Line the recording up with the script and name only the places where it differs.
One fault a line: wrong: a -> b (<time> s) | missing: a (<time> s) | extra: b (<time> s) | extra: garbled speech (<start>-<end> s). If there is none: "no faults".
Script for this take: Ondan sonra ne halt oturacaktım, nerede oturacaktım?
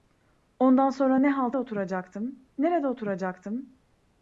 no faults